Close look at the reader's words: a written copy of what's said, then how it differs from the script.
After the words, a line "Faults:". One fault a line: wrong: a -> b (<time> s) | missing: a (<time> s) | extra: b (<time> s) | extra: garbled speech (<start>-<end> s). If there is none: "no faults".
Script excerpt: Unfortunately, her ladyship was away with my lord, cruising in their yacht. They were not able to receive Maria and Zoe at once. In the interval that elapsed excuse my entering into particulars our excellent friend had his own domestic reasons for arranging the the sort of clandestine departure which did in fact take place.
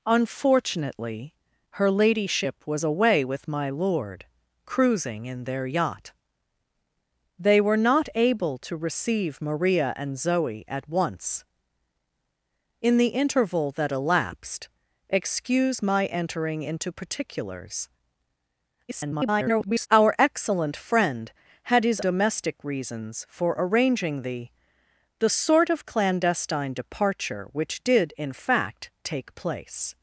Unfortunately, her ladyship was away with my lord, cruising in their yacht. They were not able to receive Maria and Zoe at once. In the interval that elapsed excuse my entering into particulars [garbled] our excellent friend had his domestic reasons for arranging the the sort of clandestine departure which did in fact take place.
Faults:
extra: garbled speech (18.9-19.9 s)
missing: own (22.0 s)